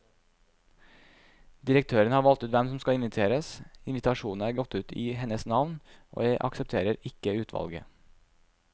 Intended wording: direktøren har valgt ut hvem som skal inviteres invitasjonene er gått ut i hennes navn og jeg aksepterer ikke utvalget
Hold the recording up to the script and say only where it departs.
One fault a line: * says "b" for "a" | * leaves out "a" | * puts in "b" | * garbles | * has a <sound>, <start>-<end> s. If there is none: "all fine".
all fine